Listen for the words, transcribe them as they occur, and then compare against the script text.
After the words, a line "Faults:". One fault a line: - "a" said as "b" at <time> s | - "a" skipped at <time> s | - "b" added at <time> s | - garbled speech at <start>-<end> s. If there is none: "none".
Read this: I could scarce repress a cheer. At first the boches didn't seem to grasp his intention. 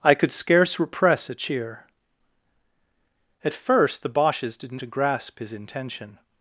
I could scarce repress a cheer. At first the boches didn't to grasp his intention.
Faults:
- "seem" skipped at 4.8 s